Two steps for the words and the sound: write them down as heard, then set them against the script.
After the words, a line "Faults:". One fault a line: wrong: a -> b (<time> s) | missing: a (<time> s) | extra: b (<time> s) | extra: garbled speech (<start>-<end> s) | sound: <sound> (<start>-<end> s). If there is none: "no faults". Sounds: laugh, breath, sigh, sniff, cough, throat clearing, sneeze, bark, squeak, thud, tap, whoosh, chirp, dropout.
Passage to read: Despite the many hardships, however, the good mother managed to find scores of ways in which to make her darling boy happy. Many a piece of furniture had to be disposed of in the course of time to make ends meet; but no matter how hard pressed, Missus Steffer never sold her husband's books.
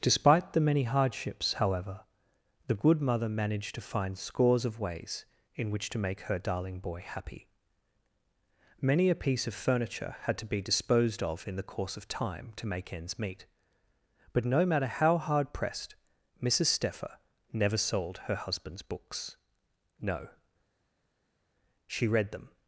Despite the many hardships, however, the good mother managed to find scores of ways in which to make her darling boy happy. Many a piece of furniture had to be disposed of in the course of time to make ends meet; but no matter how hard pressed, Missus Steffer never sold her husband's books. No; she read them
Faults:
extra: No she read them (20.0 s)